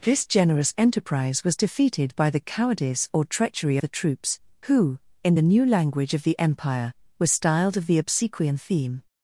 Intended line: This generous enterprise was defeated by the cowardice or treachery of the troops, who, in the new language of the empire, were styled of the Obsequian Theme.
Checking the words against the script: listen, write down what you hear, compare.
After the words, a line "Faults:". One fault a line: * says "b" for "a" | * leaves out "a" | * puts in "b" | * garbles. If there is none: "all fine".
This generous enterprise was defeated by the cowardice or treachery the troops, who, in the new language of the empire, were styled of the Obsequian Theme.
Faults:
* leaves out "of"